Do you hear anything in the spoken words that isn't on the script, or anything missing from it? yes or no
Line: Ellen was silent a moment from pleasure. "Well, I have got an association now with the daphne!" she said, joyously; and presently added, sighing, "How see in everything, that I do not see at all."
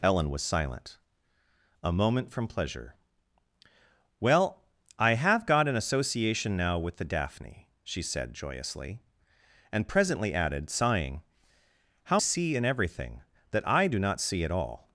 no